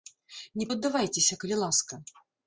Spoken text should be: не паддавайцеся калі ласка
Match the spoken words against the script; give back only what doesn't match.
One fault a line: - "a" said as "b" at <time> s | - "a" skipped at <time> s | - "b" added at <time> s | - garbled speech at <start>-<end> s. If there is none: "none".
none